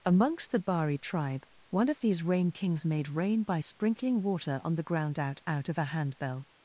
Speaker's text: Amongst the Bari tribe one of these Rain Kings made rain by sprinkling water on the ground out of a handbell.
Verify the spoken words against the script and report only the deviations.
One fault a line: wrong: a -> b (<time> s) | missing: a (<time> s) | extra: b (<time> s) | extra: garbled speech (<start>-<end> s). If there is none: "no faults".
extra: out (5.5 s)